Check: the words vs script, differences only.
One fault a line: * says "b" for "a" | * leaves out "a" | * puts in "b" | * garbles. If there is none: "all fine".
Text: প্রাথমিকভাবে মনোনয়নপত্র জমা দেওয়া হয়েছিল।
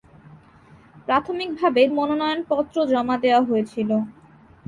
all fine